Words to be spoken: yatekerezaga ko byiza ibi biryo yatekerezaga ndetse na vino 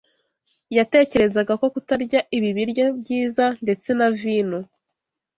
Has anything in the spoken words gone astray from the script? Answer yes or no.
yes